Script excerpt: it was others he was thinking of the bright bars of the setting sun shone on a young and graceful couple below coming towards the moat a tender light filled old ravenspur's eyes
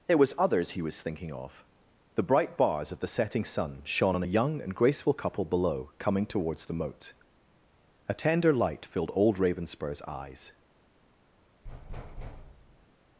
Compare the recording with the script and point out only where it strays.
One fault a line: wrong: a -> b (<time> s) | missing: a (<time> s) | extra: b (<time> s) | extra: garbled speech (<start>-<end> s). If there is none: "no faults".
no faults